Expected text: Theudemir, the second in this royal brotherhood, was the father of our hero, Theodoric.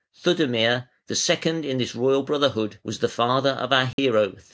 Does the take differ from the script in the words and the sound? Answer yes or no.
yes